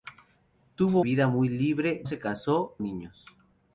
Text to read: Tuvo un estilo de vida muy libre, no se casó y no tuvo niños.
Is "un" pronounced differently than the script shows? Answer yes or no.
yes